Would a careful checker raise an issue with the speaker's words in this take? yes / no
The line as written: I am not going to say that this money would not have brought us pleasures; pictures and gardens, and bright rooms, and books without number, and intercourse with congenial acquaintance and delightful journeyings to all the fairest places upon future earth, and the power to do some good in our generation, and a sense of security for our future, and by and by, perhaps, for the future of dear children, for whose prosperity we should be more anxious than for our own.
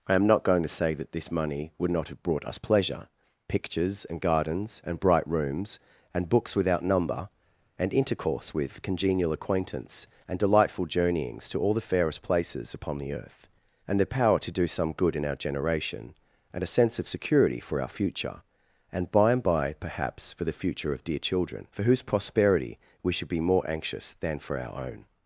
yes